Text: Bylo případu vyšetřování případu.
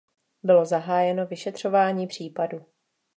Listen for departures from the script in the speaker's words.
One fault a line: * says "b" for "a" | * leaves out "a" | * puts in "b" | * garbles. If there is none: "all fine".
* says "zahájeno" for "případu"